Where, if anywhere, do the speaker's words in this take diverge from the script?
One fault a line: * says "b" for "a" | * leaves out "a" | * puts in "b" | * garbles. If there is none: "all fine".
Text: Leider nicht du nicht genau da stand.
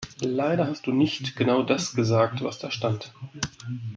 * says "hast" for "nicht"
* puts in "das gesagt was"